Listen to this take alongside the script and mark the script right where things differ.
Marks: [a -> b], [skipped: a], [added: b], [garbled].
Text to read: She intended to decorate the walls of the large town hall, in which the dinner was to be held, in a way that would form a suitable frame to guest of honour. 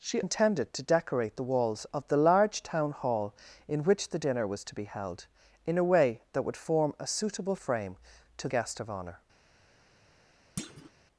She intended to decorate the walls of the large town hall, in which the dinner was to be held, in a way that would form a suitable frame to guest of honour.